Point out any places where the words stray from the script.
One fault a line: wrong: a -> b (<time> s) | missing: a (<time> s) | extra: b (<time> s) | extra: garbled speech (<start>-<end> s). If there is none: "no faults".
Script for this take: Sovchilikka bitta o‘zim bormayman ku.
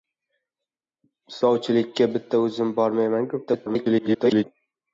extra: garbled speech (3.5-4.4 s)